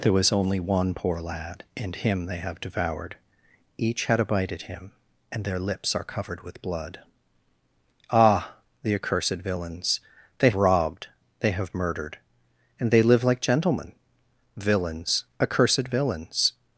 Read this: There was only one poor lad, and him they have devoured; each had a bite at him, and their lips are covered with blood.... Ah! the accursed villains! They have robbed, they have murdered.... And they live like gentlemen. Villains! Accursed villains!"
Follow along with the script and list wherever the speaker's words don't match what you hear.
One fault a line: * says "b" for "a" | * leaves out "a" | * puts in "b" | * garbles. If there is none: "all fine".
* leaves out "have"